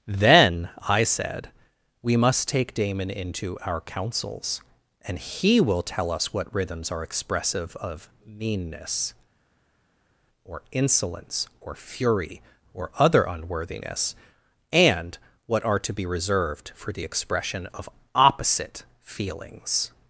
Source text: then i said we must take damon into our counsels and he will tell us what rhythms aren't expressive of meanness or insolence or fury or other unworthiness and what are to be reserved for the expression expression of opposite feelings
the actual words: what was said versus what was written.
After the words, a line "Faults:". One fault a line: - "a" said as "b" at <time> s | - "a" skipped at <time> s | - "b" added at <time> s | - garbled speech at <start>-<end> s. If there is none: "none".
then i said we must take damon into our counsels and he will tell us what rhythms are expressive of meanness or insolence or fury or other unworthiness and what are to be reserved for the expression of opposite feelings
Faults:
- "aren't" said as "are" at 6.9 s
- "expression" skipped at 17.7 s